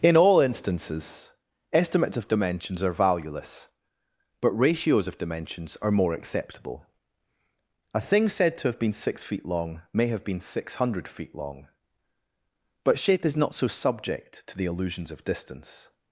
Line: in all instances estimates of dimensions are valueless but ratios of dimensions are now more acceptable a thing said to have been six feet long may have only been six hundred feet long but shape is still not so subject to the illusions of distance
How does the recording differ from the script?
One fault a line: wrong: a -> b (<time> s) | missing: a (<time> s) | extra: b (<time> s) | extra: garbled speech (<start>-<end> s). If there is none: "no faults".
missing: now (5.9 s)
missing: only (10.2 s)
missing: still (13.4 s)